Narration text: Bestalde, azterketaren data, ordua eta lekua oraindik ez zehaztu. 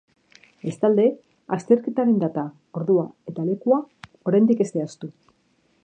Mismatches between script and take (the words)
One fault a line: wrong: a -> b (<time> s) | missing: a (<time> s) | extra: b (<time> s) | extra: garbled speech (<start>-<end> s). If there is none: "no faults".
no faults